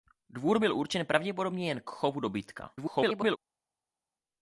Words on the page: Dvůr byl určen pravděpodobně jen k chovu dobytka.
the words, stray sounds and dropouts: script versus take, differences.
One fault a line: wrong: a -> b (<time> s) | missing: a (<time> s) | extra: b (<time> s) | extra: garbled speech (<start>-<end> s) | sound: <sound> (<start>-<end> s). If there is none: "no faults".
extra: garbled speech (2.8-3.4 s)